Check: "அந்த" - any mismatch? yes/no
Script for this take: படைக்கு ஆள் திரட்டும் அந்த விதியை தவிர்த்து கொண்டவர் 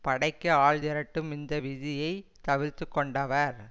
yes